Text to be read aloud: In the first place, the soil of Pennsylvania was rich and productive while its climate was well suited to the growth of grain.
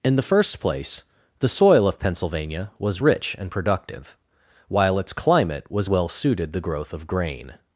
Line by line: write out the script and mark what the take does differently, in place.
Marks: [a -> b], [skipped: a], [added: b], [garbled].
In the first place, the soil of Pennsylvania was rich and productive while its climate was well suited [skipped: to] the growth of grain.